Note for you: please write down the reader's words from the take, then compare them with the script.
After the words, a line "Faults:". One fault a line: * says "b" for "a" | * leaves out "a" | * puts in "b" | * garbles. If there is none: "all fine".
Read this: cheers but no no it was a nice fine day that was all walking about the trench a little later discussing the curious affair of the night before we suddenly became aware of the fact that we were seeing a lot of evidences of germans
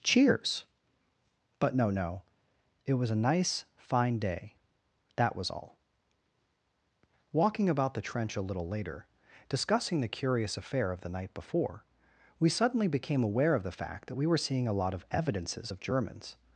cheers but no no it was a nice fine day that was all walking about the trench a little later discussing the curious affair of the night before we suddenly became aware of the fact that we were seeing a lot of evidences of germans
Faults:
all fine